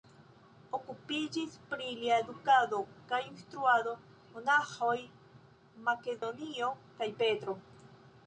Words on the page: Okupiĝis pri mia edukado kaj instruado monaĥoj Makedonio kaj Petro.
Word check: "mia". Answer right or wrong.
wrong